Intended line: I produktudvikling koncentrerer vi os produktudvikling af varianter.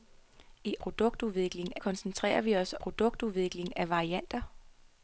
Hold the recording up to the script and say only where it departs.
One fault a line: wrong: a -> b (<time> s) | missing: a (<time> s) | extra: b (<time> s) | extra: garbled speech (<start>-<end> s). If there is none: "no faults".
no faults